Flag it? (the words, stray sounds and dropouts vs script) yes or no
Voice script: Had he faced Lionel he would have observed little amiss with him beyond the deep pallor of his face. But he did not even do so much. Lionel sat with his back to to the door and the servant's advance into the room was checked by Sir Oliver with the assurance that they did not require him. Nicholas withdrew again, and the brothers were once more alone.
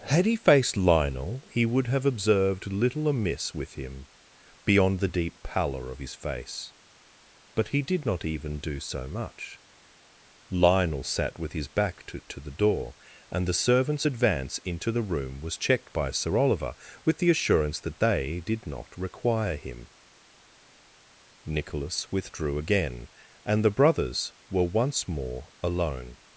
no